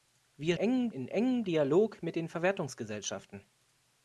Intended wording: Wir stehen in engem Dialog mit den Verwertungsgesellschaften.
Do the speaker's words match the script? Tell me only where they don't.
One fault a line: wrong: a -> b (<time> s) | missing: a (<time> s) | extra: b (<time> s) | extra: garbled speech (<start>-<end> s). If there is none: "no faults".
wrong: stehen -> engem (0.5 s)